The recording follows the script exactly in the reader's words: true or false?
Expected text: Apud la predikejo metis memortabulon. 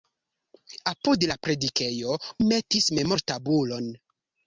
true